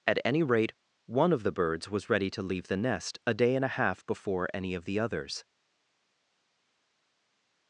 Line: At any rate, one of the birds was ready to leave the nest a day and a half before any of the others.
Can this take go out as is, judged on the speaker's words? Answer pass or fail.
pass